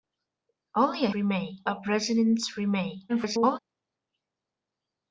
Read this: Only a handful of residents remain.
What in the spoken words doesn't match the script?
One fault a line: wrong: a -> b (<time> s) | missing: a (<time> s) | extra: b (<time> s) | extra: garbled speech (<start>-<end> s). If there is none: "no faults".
wrong: handful -> remain (1.1 s)
extra: garbled speech (3.1-3.6 s)